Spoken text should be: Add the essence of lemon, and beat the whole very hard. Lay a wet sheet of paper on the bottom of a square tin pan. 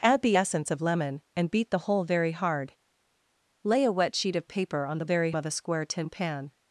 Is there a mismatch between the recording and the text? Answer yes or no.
yes